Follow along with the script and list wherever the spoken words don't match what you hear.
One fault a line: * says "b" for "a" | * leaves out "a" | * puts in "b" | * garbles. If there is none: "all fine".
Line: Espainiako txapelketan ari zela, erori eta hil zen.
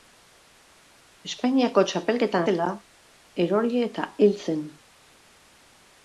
* leaves out "ari"